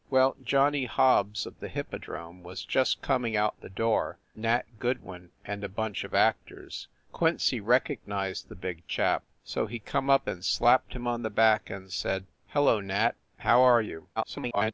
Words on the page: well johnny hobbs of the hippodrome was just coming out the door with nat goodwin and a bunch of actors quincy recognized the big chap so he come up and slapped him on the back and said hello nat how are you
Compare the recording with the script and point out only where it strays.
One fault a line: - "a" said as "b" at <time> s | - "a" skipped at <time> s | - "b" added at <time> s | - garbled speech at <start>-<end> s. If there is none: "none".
- "with" skipped at 4.2 s
- garbled speech at 14.2-14.7 s